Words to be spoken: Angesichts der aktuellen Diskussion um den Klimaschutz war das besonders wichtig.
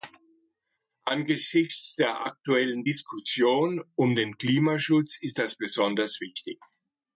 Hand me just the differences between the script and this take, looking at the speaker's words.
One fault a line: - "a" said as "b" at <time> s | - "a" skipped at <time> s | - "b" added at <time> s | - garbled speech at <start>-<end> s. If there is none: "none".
- "war" said as "ist" at 5.2 s